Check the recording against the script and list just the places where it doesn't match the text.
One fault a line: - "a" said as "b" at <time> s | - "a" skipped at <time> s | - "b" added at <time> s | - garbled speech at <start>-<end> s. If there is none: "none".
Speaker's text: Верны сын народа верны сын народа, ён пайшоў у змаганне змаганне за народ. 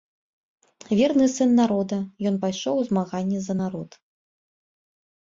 - "верны сын народа" skipped at 2.0 s
- "змаганне" skipped at 3.4 s